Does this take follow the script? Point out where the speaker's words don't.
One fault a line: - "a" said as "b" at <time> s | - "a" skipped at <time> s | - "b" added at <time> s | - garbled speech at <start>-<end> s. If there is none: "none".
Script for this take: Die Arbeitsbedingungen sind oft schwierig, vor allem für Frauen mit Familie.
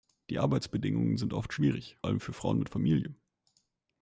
- "vor" skipped at 2.0 s